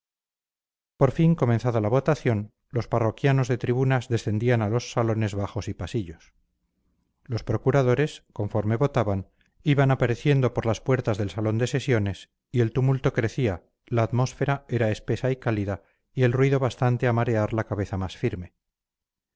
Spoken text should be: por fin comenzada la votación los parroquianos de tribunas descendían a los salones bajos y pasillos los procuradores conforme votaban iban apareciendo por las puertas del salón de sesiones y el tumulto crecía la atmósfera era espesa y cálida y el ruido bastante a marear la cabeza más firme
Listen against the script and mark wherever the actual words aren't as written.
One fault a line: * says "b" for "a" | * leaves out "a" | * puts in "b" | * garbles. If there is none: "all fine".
all fine